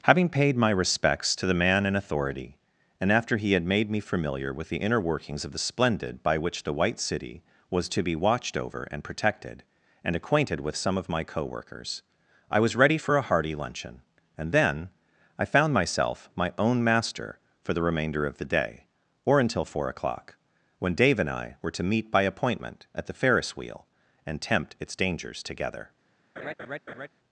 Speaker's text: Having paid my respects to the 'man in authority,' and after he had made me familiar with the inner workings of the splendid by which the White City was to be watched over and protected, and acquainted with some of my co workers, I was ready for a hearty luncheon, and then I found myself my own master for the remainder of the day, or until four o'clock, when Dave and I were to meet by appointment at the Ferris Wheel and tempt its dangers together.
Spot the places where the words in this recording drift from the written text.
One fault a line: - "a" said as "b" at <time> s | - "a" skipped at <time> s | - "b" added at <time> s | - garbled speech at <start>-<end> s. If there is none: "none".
none